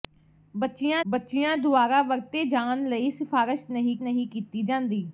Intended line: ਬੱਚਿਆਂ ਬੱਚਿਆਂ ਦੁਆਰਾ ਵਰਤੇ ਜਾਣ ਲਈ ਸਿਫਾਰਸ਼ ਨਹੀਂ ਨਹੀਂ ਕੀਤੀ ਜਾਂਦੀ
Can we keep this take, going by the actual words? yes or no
yes